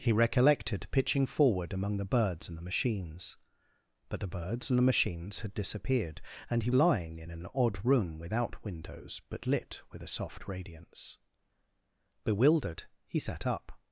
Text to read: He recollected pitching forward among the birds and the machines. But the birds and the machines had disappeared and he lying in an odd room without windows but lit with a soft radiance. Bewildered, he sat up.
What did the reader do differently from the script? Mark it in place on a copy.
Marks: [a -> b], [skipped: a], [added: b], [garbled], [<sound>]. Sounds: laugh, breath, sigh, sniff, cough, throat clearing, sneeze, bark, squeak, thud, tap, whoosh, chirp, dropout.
He recollected pitching forward among the birds and the machines. But the birds and the machines had disappeared and he lying in an odd room without windows but lit with a soft radiance. Bewildered, he sat up.